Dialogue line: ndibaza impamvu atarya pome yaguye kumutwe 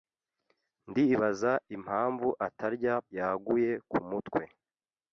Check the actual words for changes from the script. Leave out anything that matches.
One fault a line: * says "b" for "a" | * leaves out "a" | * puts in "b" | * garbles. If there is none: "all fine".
* leaves out "pome"